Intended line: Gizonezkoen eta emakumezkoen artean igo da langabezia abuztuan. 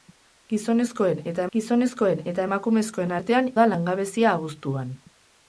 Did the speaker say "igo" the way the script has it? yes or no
no